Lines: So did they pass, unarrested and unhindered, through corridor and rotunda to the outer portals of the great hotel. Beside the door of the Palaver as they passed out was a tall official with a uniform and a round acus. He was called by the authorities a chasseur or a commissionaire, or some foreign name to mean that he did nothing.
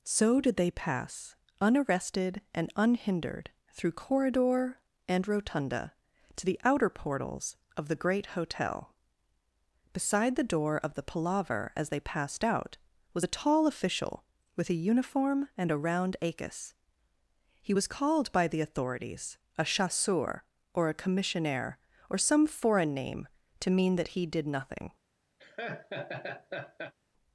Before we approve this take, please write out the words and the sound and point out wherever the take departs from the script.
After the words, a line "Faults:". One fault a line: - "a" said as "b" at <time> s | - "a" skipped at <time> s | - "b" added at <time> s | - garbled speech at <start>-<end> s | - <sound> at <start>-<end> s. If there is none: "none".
So did they pass, unarrested and unhindered, through corridor and rotunda to the outer portals of the great hotel. Beside the door of the Palaver as they passed out was a tall official with a uniform and a round acus. He was called by the authorities a chasseur or a commissionaire, or some foreign name to mean that he did nothing.
Faults:
- laugh at 25.4-26.9 s